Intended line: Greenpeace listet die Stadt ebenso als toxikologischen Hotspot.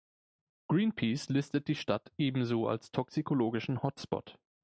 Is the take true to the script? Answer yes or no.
yes